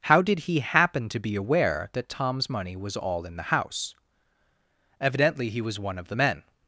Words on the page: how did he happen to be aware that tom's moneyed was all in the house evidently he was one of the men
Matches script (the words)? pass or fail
fail